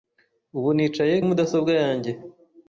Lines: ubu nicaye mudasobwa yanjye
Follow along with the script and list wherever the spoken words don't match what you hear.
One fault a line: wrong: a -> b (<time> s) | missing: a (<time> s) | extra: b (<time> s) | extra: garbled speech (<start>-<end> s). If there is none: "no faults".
no faults